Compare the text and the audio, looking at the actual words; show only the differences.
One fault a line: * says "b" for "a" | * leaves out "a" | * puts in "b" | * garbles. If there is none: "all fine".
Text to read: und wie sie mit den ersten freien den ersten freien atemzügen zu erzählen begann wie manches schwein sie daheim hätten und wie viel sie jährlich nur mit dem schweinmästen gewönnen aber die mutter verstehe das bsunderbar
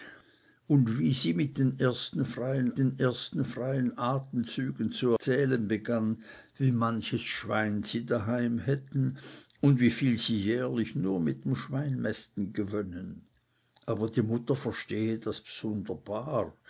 all fine